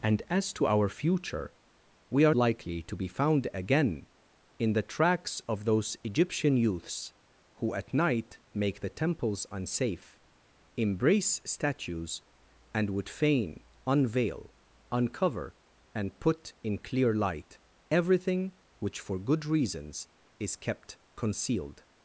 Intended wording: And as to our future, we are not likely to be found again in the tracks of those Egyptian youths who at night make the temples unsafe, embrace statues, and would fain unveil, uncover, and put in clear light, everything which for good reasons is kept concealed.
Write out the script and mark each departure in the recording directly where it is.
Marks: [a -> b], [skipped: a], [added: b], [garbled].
And as to our future, we are [skipped: not] likely to be found again in the tracks of those Egyptian youths who at night make the temples unsafe, embrace statues, and would fain unveil, uncover, and put in clear light, everything which for good reasons is kept concealed.